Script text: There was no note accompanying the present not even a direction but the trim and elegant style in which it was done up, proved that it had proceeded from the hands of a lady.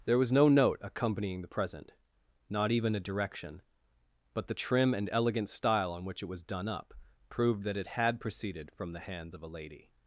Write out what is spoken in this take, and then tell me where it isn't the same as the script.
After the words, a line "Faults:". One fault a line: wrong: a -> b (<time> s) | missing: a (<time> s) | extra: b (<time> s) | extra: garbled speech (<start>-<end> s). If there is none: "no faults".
There was no note accompanying the present not even a direction but the trim and elegant style on which it was done up, proved that it had proceeded from the hands of a lady.
Faults:
wrong: in -> on (5.9 s)